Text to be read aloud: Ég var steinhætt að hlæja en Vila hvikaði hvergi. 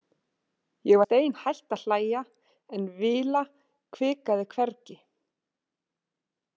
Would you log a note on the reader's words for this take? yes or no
yes